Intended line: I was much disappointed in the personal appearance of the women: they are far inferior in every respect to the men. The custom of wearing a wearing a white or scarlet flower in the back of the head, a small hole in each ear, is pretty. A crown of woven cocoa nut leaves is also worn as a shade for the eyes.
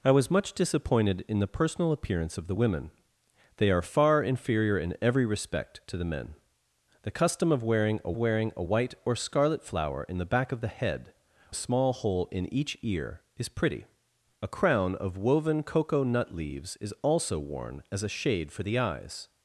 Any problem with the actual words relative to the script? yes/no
no